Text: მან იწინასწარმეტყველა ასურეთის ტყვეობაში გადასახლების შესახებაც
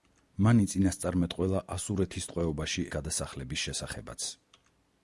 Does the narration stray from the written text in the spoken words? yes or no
no